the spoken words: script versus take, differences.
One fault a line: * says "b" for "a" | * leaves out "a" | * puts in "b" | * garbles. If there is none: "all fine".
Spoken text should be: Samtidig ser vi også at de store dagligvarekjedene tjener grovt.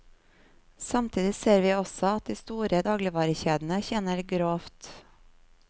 all fine